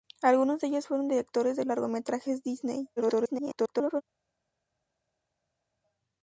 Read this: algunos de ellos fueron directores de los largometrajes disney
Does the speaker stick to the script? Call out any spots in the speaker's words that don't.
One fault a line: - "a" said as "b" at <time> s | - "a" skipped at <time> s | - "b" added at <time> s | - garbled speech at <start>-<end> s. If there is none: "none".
- "los" skipped at 1.6 s
- garbled speech at 3.0-4.0 s